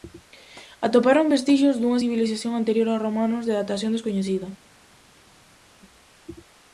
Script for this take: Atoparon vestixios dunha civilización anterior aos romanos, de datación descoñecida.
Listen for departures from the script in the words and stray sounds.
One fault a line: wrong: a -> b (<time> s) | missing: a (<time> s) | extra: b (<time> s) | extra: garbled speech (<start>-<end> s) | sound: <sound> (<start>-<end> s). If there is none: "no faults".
no faults